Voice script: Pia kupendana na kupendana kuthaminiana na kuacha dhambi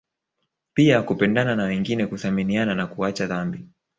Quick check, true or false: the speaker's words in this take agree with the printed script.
false